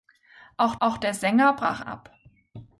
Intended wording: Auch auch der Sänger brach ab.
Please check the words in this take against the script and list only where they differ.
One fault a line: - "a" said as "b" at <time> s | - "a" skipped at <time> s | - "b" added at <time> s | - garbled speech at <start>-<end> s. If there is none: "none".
none